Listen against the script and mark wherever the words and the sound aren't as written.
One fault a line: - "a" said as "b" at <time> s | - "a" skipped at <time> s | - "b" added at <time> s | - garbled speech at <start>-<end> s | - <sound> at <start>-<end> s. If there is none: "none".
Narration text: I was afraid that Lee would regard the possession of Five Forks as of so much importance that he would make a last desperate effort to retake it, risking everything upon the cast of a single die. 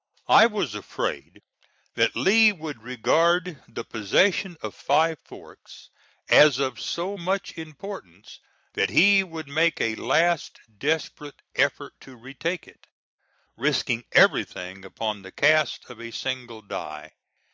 none